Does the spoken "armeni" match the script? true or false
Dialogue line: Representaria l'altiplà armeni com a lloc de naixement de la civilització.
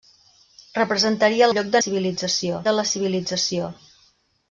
false